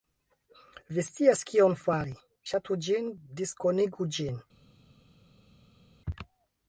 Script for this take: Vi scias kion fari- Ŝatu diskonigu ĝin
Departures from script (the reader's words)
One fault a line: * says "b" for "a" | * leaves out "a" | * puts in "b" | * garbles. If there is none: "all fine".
* puts in "ĝin"